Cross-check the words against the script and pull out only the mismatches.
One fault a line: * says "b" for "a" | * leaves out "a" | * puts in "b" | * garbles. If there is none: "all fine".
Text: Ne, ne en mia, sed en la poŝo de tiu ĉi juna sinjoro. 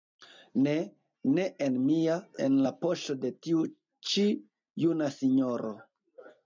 * leaves out "sed"